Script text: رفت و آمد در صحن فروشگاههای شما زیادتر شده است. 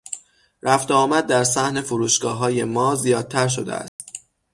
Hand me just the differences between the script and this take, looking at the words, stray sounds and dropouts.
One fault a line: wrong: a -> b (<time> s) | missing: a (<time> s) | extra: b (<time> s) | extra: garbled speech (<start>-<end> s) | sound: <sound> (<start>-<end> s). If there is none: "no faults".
wrong: شما -> ما (2.6 s)
sound: dropout (3.9-4.0 s)